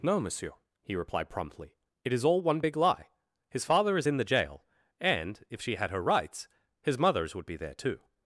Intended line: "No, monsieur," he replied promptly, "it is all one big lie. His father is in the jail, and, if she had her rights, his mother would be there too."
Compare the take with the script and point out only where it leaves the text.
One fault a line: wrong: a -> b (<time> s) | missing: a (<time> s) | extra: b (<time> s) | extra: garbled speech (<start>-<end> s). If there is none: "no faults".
wrong: mother -> mothers (7.0 s)